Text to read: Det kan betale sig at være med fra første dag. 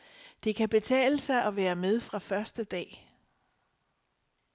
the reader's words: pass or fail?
pass